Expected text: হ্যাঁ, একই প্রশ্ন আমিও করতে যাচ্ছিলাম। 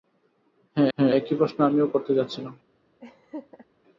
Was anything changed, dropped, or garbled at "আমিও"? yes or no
no